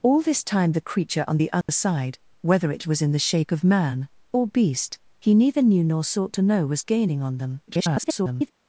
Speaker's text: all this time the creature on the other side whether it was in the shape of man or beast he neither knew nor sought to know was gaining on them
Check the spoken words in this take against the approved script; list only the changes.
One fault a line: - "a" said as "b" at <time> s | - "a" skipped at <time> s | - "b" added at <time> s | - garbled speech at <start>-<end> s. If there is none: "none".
- garbled speech at 7.7-8.5 s